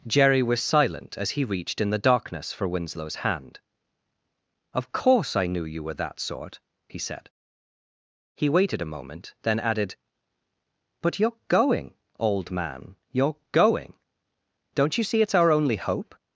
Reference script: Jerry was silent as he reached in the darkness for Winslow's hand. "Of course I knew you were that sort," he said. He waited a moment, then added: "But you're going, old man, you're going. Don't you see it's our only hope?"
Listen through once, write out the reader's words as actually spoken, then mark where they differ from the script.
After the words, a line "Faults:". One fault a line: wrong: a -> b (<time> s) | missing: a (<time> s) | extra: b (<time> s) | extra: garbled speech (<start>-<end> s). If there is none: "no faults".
Jerry was silent as he reached in the darkness for Winslow's hand. "Of course I knew you were that sort," he said. He waited a moment, then added: "But you're going, old man, you're going. Don't you see it's our only hope?"
Faults:
no faults